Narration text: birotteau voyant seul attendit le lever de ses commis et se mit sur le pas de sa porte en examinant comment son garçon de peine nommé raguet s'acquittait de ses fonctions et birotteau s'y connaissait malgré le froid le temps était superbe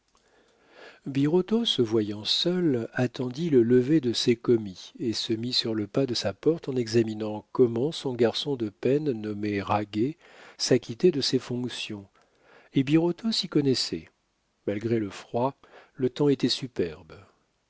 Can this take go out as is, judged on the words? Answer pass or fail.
fail